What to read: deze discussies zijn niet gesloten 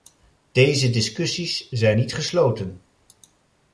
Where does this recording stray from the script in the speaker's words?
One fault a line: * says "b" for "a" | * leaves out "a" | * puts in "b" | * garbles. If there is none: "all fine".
all fine